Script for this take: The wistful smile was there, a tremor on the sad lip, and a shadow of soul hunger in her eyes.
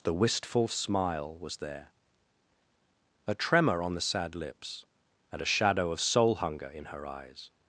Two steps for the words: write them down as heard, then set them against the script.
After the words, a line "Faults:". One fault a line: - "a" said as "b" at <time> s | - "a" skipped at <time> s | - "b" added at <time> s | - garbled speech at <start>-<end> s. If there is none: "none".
The wistful smile was there, a tremor on the sad lips, and a shadow of soul hunger in her eyes.
Faults:
- "lip" said as "lips" at 4.3 s